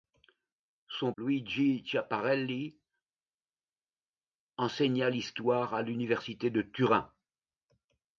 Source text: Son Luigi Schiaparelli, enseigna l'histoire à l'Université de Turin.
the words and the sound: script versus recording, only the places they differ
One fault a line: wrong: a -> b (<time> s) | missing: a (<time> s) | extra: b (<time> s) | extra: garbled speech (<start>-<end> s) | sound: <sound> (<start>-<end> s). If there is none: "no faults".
no faults